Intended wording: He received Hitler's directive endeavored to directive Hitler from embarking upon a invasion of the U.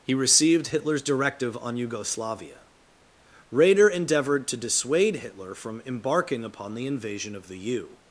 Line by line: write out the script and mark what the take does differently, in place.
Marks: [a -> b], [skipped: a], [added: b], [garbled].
He received Hitler's directive [added: on Yugoslavia Raeder] endeavored to [directive -> dissuade] Hitler from embarking upon [a -> the] invasion of the U.